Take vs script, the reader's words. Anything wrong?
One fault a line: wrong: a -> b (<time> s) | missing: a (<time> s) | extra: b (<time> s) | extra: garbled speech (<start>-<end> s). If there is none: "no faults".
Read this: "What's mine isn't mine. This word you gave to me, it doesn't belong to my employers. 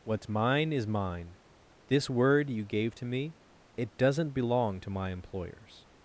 wrong: isn't -> is (0.7 s)